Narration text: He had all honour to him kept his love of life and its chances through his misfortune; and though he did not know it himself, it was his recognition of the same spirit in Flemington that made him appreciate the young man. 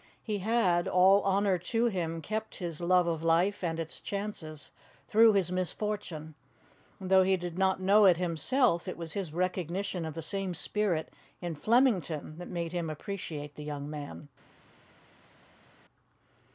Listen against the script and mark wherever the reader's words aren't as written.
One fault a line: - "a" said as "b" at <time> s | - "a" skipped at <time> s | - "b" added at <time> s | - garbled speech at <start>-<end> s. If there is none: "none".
none